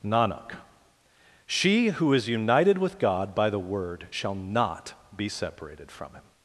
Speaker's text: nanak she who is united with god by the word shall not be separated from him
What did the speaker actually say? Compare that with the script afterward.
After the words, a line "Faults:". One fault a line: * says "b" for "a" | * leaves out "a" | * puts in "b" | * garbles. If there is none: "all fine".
nanak she who is united with god by the word shall not be separated from him
Faults:
all fine